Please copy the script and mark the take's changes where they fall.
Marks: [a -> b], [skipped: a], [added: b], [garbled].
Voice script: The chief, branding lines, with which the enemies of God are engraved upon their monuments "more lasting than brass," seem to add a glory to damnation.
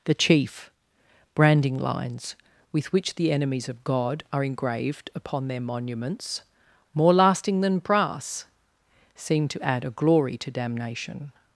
The chief, branding lines, with which the enemies of God are engraved upon their monuments "more lasting than brass," seem to add a glory to damnation.